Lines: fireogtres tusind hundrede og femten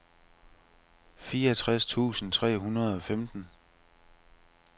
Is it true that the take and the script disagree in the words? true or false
true